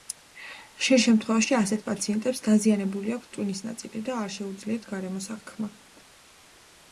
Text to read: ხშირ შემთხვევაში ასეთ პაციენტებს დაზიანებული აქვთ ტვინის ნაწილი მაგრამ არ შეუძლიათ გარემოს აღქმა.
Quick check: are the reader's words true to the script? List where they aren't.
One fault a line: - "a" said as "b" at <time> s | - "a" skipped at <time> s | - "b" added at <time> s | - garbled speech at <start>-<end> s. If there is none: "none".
- "მაგრამ" said as "და" at 4.1 s